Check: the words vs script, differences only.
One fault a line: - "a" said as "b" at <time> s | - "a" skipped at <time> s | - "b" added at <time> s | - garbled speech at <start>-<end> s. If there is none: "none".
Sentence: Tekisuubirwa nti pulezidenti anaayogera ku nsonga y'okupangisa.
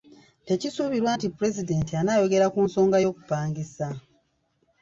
none